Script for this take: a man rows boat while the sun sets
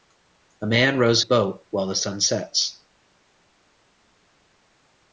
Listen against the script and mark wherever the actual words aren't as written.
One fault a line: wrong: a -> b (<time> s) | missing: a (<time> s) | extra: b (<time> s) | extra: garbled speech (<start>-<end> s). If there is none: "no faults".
no faults